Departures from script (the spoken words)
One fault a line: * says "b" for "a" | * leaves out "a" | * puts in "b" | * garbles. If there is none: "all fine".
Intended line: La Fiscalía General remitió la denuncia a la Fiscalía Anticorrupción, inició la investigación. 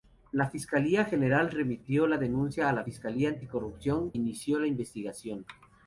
all fine